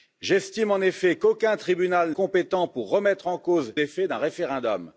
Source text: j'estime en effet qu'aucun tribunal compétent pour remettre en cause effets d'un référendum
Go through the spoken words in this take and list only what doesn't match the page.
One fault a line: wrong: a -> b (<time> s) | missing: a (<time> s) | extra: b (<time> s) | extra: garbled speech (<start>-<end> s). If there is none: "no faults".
no faults